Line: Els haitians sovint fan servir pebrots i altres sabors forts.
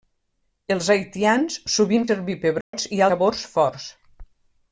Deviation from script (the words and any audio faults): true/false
true